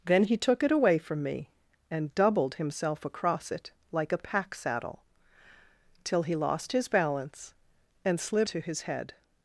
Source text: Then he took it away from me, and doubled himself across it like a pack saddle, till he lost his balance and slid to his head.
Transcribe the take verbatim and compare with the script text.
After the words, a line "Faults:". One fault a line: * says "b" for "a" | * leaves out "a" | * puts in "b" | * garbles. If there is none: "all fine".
Then he took it away from me, and doubled himself across it like a pack saddle, till he lost his balance and slid to his head.
Faults:
all fine